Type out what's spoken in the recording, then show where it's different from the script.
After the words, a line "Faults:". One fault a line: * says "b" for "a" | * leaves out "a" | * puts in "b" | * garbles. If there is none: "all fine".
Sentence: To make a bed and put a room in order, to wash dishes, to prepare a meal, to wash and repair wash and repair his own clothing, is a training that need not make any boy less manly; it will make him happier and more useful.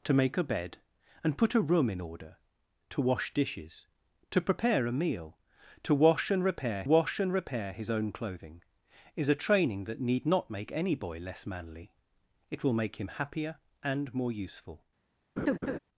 To make a bed and put a room in order, to wash dishes, to prepare a meal, to wash and repair wash and repair his own clothing, is a training that need not make any boy less manly; it will make him happier and more useful.
Faults:
all fine